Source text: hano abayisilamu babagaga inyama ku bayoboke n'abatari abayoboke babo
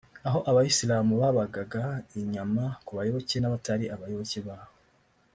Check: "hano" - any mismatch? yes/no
yes